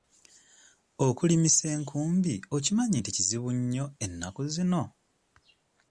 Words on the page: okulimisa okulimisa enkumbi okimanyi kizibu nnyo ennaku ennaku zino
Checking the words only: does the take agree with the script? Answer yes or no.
no